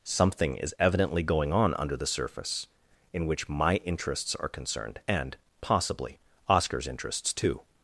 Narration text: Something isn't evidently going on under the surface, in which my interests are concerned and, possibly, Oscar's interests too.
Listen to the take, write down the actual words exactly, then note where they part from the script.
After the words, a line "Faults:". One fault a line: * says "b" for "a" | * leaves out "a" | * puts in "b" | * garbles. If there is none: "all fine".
Something is evidently going on under the surface, in which my interests are concerned and, possibly, Oscar's interests too.
Faults:
* says "is" for "isn't"